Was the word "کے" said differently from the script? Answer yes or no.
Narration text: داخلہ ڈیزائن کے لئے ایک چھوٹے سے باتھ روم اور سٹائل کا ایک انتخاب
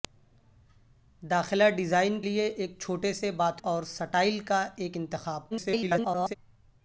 yes